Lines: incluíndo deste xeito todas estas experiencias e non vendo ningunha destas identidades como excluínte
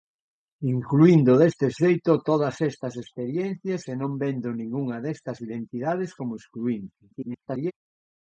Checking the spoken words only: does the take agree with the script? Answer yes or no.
no